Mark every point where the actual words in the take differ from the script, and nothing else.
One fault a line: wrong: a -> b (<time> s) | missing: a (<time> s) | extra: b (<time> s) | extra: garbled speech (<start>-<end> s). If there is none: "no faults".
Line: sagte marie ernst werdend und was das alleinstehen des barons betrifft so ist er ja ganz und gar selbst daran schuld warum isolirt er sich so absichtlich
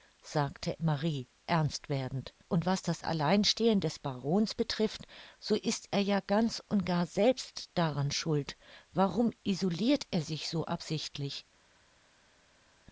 no faults